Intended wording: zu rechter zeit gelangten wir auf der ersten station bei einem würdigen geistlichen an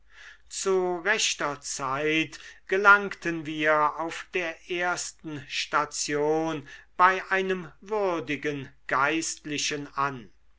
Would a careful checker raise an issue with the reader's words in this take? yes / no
no